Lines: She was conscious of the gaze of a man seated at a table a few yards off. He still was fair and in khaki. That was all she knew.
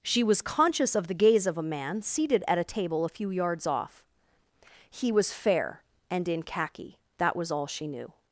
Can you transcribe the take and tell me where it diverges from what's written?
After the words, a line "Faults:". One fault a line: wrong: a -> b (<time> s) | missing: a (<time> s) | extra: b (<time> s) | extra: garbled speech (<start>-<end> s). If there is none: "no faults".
She was conscious of the gaze of a man seated at a table a few yards off. He was fair and in khaki. That was all she knew.
Faults:
missing: still (5.1 s)